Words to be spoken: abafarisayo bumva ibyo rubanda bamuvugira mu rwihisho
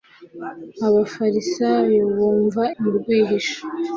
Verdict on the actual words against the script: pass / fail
fail